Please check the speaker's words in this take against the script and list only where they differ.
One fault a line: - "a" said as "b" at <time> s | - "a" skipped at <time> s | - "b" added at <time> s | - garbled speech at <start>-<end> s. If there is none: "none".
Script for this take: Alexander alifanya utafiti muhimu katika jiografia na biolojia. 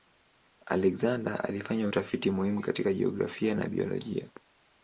none